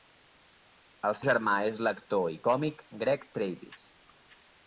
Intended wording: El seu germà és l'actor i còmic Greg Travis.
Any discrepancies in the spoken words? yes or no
yes